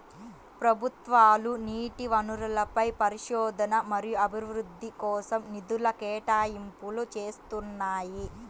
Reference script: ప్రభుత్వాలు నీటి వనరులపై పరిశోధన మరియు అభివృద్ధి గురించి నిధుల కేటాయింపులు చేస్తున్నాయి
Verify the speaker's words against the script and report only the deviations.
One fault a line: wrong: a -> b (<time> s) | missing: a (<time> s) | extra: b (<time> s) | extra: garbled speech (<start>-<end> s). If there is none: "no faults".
wrong: గురించి -> కోసం (5.0 s)